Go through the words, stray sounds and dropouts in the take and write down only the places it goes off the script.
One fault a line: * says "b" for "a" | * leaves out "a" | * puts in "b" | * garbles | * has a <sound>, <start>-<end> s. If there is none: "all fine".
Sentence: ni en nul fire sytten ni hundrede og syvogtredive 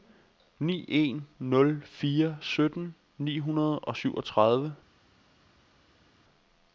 all fine